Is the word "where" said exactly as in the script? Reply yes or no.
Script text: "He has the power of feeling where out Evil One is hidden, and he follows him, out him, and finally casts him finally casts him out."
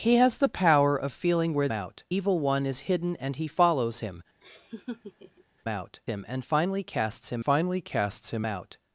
yes